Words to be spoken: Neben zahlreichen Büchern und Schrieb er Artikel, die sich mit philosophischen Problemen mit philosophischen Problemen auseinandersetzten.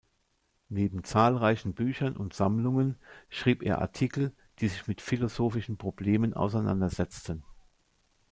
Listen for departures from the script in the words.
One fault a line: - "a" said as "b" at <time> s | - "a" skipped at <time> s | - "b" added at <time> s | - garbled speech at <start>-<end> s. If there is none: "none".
- "Sammlungen" added at 2.3 s
- "mit philosophischen Problemen" skipped at 6.3 s